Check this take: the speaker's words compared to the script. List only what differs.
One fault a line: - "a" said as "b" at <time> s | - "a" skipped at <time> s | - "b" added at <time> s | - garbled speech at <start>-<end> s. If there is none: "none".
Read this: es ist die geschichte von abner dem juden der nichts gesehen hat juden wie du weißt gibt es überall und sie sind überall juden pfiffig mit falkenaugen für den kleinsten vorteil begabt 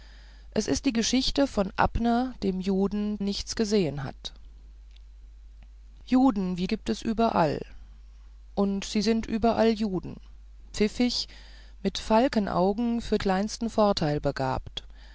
- "der" skipped at 3.2 s
- "du weißt" skipped at 6.7 s
- "den" skipped at 13.2 s